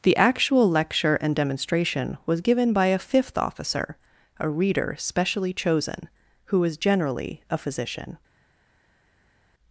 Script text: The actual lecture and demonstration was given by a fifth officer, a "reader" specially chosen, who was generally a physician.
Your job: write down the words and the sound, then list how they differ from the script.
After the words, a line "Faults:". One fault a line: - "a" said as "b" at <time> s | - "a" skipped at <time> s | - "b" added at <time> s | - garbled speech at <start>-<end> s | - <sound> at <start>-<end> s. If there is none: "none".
The actual lecture and demonstration was given by a fifth officer, a "reader" specially chosen, who was generally a physician.
Faults:
none